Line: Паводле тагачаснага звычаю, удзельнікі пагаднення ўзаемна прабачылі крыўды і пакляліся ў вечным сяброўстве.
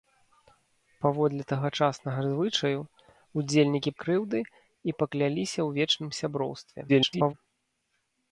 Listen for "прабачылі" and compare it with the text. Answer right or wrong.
wrong